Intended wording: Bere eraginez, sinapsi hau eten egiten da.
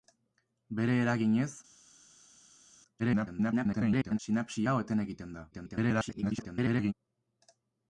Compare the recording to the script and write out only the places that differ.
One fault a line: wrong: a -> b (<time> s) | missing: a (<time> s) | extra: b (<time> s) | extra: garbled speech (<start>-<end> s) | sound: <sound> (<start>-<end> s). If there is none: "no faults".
extra: garbled speech (3.0-4.2 s)
extra: garbled speech (5.5-6.9 s)